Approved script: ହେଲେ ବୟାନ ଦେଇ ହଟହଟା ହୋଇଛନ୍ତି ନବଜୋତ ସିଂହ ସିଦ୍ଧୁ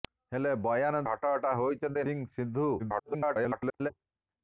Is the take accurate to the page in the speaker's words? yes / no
no